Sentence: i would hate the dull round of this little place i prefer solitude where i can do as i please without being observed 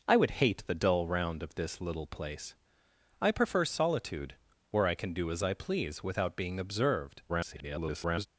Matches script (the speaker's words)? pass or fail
fail